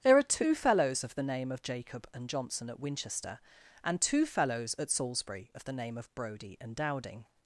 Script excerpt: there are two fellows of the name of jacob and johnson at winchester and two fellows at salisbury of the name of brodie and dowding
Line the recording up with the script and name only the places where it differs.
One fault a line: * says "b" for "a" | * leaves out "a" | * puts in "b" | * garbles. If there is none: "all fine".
all fine